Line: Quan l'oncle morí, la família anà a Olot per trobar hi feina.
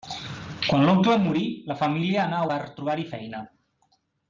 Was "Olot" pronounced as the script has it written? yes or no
no